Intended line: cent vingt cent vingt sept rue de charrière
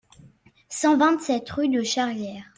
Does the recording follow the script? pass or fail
fail